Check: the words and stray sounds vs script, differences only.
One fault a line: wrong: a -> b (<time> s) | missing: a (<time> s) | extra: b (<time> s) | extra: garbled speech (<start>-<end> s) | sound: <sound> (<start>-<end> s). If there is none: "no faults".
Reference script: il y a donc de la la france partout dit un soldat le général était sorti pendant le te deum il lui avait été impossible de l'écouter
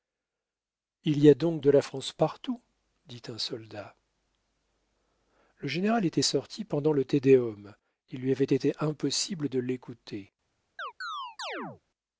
missing: la (1.8 s)
sound: chirp (10.8-11.8 s)